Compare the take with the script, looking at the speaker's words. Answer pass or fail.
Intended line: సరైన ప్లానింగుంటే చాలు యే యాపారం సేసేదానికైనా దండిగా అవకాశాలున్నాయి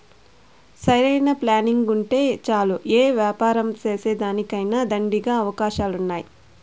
pass